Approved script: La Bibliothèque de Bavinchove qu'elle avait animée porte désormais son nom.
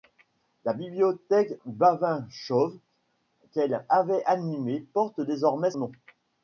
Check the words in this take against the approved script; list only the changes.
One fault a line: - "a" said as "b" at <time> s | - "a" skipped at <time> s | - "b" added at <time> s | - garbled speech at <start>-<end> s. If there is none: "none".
- "de" skipped at 1.6 s
- "son" skipped at 5.7 s